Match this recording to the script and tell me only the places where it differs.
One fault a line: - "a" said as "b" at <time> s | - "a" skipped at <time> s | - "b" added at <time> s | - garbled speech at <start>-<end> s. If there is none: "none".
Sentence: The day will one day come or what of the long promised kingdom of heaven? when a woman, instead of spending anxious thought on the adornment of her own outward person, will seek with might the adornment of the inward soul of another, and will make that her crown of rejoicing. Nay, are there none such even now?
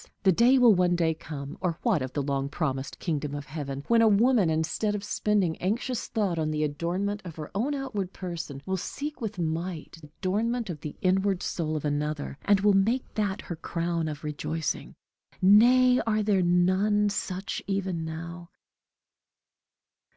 - "the" skipped at 10.0 s